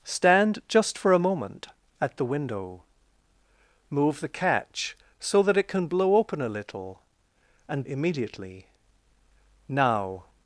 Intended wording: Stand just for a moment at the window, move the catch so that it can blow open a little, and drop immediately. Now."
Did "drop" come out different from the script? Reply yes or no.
yes